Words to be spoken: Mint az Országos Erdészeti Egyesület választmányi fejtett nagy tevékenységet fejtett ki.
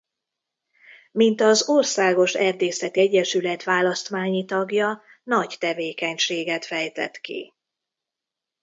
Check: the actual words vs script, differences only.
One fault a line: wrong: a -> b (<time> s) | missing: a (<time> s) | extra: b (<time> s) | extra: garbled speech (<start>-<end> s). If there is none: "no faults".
wrong: fejtett -> tagja (4.5 s)